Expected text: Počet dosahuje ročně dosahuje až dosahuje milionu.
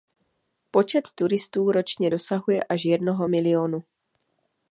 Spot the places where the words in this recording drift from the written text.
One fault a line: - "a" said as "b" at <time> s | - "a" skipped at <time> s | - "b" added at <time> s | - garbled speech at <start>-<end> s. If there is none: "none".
- "dosahuje" said as "turistů" at 1.1 s
- "dosahuje" said as "jednoho" at 2.8 s